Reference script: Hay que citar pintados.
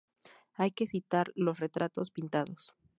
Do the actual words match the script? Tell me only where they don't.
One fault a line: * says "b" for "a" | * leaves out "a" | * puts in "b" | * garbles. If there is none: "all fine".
* puts in "los retratos"